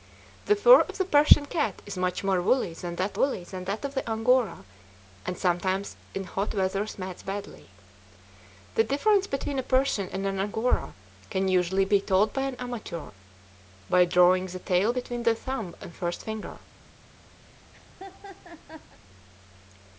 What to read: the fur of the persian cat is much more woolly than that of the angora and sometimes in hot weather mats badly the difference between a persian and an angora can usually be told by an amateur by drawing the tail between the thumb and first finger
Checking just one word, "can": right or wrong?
right